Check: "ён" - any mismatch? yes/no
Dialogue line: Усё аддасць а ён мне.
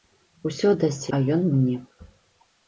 no